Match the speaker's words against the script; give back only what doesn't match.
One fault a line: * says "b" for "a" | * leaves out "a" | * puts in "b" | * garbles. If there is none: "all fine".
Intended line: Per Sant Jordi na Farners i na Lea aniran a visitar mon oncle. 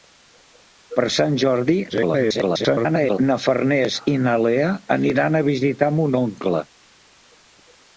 * garbles